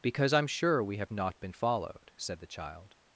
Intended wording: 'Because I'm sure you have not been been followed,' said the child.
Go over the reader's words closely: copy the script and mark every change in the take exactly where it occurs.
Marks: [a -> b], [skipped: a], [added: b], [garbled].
'Because I'm sure [you -> we] have not been [skipped: been] followed,' said the child.